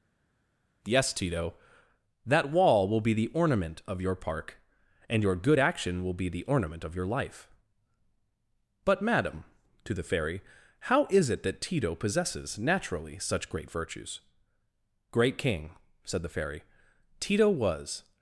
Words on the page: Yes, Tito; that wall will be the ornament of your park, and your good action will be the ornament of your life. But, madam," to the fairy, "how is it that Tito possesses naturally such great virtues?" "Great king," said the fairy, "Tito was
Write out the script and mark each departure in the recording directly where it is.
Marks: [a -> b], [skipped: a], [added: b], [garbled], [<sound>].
Yes, Tito; that wall will be the ornament of your park, and your good action will be the ornament of your life. But, madam," to the fairy, "how is it that Tito possesses naturally such great virtues?" "Great king," said the fairy, "Tito was